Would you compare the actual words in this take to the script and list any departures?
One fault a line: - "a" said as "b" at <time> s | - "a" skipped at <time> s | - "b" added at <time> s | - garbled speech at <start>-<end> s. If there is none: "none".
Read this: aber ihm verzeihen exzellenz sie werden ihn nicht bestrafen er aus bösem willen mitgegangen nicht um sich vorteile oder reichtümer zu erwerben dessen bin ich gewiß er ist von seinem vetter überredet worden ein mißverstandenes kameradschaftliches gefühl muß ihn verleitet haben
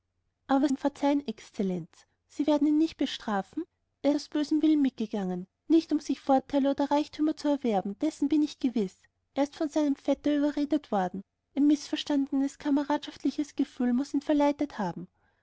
none